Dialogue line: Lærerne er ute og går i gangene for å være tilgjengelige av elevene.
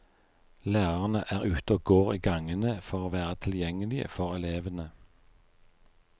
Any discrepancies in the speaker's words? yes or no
yes